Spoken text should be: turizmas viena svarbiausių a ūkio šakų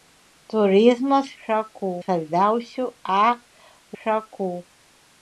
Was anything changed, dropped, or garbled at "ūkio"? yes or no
yes